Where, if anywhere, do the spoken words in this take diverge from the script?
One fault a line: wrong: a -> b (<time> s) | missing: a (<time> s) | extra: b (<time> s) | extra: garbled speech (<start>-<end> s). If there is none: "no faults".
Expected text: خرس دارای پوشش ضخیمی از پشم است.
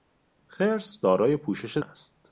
missing: ضخیمی از پشم (1.8 s)